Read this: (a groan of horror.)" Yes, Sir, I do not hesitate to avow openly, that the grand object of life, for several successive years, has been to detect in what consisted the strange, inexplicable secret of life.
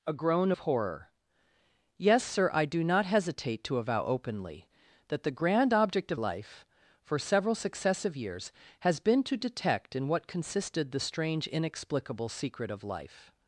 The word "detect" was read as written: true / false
true